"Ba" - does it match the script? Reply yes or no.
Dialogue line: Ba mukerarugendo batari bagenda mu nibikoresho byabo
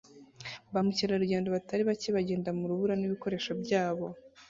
yes